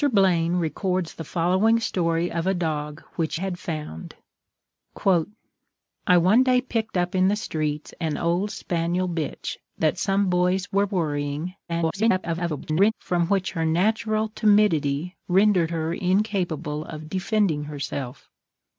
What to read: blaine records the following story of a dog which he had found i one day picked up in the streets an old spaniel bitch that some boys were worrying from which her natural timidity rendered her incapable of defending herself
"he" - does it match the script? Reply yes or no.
no